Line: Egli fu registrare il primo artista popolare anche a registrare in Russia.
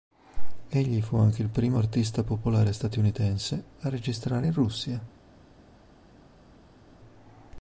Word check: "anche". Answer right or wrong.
wrong